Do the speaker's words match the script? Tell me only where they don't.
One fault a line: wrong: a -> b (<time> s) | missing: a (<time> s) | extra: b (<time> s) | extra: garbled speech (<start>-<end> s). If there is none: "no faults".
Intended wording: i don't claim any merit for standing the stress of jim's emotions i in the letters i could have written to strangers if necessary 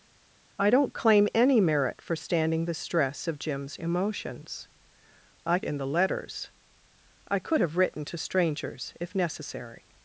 no faults